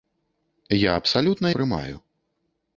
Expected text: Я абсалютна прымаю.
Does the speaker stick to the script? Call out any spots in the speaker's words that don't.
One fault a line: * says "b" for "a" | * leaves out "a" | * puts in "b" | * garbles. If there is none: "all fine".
all fine